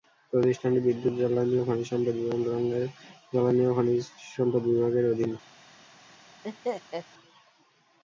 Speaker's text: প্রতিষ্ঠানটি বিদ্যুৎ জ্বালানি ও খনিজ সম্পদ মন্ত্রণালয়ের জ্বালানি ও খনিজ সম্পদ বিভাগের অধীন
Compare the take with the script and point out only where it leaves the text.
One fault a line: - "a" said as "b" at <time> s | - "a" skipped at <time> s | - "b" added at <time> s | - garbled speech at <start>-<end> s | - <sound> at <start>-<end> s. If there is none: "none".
- laugh at 6.4-7.1 s